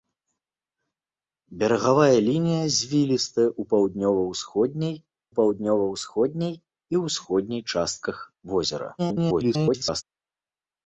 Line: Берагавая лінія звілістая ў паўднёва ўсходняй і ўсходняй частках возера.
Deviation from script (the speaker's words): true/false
true